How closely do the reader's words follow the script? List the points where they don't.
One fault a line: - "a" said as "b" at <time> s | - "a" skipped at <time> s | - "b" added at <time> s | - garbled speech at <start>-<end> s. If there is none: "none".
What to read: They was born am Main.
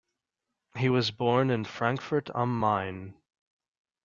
- "They" said as "He" at 0.8 s
- "in Frankfurt" added at 1.5 s